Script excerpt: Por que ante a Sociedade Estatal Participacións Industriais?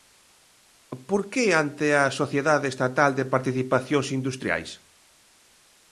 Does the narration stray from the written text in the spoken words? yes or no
yes